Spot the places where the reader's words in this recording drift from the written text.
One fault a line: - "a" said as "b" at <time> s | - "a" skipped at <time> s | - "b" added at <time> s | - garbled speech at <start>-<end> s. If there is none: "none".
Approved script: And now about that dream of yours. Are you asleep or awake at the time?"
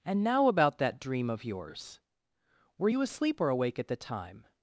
- "Are" said as "Were" at 2.8 s